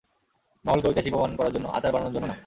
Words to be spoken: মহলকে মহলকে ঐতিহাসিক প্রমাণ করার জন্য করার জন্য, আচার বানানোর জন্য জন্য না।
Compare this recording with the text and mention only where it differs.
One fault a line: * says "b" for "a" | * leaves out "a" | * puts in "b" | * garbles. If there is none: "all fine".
* leaves out "মহলকে"
* leaves out "করার জন্য"
* leaves out "জন্য"